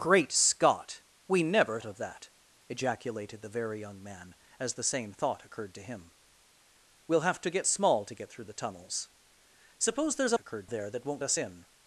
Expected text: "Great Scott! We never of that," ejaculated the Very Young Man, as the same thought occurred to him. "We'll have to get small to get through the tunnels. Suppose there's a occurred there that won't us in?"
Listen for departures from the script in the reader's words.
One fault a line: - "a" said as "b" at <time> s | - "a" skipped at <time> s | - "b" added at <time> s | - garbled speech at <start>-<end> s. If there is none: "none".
none